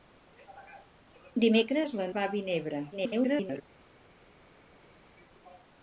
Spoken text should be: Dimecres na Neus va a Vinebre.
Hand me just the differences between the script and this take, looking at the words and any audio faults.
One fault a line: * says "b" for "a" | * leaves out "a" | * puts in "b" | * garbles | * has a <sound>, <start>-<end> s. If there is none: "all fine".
* leaves out "Neus"
* garbles